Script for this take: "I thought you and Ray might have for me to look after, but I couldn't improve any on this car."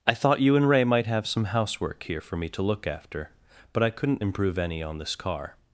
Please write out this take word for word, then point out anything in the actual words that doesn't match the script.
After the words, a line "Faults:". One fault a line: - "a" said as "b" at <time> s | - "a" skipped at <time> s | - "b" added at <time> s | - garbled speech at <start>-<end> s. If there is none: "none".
"I thought you and Ray might have some housework here for me to look after, but I couldn't improve any on this car."
Faults:
- "some housework here" added at 1.3 s